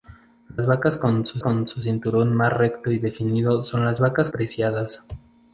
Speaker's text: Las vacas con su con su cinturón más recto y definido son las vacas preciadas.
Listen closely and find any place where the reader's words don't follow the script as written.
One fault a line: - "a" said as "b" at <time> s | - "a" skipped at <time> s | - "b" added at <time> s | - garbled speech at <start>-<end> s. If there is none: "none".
none